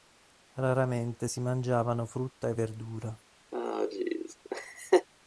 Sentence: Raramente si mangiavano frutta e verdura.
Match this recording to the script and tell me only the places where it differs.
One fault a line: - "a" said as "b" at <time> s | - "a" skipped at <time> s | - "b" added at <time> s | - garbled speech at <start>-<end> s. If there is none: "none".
none